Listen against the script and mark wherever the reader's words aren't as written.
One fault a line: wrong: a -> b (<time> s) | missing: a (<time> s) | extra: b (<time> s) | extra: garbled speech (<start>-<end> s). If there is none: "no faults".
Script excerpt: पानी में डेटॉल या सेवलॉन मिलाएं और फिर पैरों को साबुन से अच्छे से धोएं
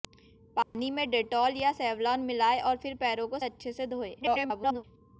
missing: साबुन से (3.4 s)
extra: garbled speech (4.2-4.8 s)